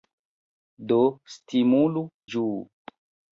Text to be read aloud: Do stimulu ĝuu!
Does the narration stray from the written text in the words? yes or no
no